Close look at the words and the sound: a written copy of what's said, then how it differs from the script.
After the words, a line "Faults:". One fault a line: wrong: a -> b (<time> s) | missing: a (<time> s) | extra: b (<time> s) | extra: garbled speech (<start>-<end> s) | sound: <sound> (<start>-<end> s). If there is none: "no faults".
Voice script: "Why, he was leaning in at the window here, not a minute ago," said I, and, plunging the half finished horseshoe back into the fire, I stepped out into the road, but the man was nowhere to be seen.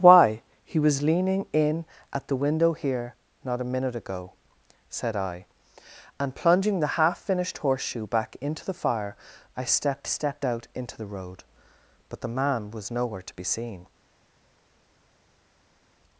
"Why, he was leaning in at the window here, not a minute ago," said I, and, plunging the half finished horseshoe back into the fire, I stepped stepped out into the road, but the man was nowhere to be seen.
Faults:
extra: stepped (10.0 s)